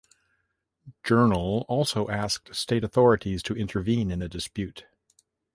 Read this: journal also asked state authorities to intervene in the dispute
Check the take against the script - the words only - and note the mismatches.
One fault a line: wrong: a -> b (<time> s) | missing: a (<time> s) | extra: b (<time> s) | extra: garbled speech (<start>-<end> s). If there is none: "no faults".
no faults